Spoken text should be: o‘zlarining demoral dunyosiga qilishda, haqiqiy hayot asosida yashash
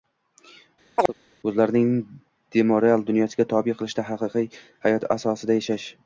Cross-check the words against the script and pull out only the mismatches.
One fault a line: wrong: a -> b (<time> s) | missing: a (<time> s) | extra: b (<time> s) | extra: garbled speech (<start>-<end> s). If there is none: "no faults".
extra: tobe (3.6 s)